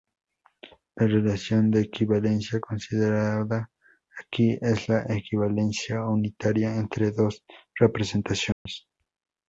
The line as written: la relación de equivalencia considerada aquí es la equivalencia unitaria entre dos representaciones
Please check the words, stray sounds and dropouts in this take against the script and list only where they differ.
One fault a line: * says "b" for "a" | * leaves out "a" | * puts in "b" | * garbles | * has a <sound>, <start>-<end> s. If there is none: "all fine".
* has a dropout, 8.5-8.7 s